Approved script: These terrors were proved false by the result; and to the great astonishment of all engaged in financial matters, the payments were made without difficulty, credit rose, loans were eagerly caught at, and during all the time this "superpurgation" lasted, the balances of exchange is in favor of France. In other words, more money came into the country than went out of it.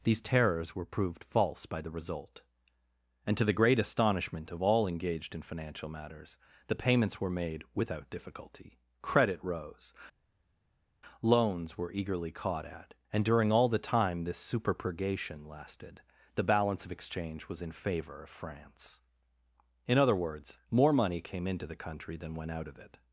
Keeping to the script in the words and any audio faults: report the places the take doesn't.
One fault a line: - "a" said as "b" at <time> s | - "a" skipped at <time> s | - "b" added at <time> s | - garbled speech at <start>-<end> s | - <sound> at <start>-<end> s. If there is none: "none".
- "balances" said as "balance" at 16.4 s
- "is" said as "was" at 17.5 s